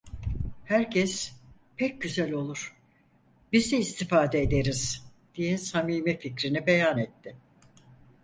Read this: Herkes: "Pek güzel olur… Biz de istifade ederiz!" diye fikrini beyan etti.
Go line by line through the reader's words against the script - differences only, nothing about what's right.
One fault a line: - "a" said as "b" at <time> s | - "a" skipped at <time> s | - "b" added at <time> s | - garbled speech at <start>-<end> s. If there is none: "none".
- "samimi" added at 5.6 s